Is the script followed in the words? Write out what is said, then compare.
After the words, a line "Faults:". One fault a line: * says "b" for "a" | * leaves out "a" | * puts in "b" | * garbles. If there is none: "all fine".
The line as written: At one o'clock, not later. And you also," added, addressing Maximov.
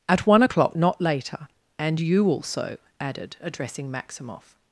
At one o'clock, not later. And you also," added, addressing Maximov.
Faults:
all fine